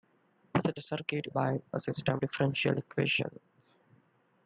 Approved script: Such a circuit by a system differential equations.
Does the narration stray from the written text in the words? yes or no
no